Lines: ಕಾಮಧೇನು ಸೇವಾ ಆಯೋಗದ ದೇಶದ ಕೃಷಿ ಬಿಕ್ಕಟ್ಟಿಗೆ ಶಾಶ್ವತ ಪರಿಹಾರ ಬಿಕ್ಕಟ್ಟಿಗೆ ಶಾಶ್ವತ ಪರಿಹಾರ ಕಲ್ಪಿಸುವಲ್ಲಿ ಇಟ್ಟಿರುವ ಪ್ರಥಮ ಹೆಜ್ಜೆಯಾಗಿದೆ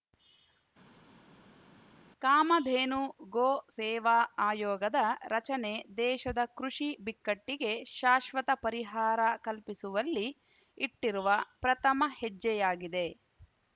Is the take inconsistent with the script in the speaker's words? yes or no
yes